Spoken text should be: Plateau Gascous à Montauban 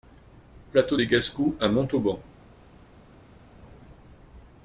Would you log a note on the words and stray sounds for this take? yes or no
yes